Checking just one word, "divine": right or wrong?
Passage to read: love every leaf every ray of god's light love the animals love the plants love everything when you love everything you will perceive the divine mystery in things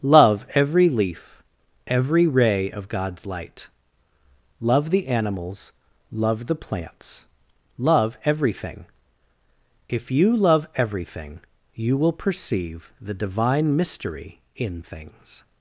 right